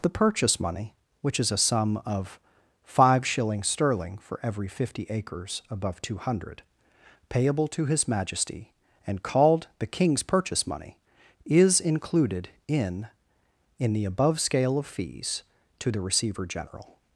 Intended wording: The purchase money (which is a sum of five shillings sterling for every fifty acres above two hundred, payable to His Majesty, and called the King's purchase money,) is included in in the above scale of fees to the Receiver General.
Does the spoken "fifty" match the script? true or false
true